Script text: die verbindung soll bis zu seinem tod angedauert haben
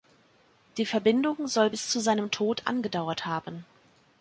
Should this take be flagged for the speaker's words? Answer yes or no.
no